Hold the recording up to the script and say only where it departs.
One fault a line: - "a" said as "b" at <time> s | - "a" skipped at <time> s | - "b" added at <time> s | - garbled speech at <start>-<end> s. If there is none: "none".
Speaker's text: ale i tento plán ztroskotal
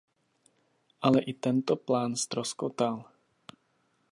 none